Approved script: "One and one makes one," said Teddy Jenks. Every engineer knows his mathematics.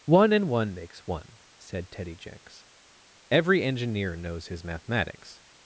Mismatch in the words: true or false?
false